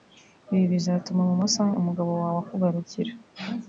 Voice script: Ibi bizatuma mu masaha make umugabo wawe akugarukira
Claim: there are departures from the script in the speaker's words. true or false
true